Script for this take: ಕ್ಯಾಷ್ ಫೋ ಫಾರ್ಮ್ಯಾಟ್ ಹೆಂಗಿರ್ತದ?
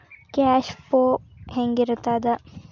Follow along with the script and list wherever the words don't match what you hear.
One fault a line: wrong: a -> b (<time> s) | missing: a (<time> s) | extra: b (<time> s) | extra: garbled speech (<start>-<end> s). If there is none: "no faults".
missing: ಫಾರ್ಮ್ಯಾಟ್ (1.0 s)